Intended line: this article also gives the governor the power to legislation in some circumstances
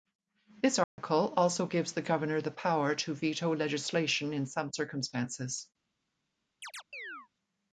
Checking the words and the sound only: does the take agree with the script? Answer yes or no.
no